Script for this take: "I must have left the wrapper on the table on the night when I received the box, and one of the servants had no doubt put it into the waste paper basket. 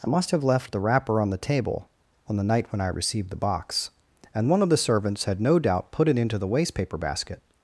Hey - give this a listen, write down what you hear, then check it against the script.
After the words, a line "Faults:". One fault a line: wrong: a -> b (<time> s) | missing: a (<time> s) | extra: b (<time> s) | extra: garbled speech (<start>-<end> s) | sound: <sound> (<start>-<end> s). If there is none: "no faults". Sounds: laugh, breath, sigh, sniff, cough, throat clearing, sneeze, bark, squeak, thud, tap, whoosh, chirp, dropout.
"I must have left the wrapper on the table on the night when I received the box, and one of the servants had no doubt put it into the waste paper basket.
Faults:
no faults